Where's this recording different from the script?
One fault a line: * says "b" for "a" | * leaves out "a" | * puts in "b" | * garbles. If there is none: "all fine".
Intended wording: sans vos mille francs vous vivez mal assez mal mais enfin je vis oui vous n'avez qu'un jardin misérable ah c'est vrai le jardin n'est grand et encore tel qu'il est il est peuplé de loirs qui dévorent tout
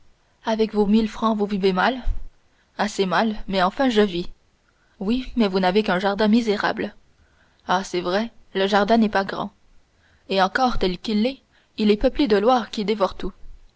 * says "avec" for "sans"
* puts in "mais"
* puts in "pas"